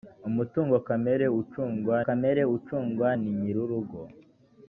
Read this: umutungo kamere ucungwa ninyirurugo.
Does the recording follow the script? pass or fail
fail